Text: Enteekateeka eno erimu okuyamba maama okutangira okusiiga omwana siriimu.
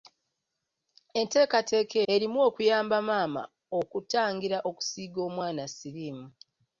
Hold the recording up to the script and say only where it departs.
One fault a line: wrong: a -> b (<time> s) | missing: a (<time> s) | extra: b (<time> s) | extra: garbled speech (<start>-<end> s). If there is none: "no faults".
missing: eno (2.0 s)